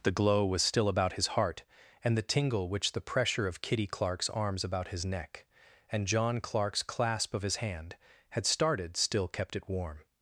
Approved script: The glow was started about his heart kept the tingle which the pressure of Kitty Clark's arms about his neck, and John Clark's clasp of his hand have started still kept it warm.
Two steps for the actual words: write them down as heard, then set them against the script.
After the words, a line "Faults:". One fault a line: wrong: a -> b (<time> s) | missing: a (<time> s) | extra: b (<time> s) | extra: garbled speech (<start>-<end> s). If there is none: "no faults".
The glow was still about his heart and the tingle which the pressure of Kitty Clark's arms about his neck, and John Clark's clasp of his hand had started still kept it warm.
Faults:
wrong: started -> still (0.6 s)
wrong: kept -> and (2.0 s)
wrong: have -> had (8.3 s)